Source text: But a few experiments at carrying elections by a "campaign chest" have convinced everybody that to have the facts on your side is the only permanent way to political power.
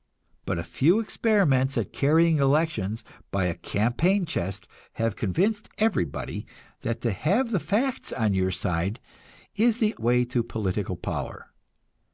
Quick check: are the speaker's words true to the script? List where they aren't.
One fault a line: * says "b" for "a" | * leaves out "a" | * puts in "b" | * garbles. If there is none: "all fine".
* leaves out "only permanent"